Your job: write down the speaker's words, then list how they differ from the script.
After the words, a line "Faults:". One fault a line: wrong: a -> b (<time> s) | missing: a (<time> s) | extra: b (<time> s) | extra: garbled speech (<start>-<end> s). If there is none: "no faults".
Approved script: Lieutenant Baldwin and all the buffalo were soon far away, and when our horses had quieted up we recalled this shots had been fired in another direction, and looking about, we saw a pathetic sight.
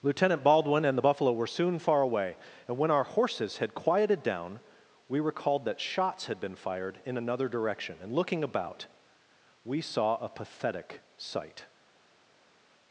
Lieutenant Baldwin and the buffalo were soon far away, and when our horses had quieted down we recalled that shots had been fired in another direction, and looking about, we saw a pathetic sight.
Faults:
missing: all (1.0 s)
wrong: up -> down (4.2 s)
wrong: this -> that (5.6 s)